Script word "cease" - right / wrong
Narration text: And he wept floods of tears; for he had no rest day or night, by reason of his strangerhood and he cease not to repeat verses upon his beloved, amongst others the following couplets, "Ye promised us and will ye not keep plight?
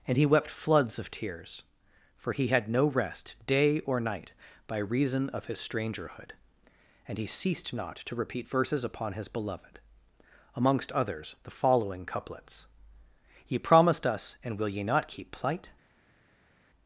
wrong